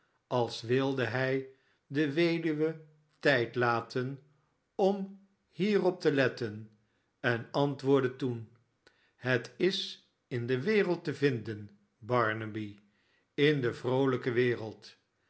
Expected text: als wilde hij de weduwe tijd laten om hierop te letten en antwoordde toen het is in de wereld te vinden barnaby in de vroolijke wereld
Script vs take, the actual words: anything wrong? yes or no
no